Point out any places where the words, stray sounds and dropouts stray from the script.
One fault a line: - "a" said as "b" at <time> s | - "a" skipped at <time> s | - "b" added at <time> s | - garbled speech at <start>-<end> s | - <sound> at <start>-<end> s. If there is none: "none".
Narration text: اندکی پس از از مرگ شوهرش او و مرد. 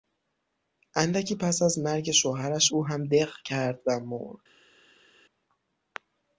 - "از" skipped at 1.8 s
- "هم دق کرد" added at 2.9 s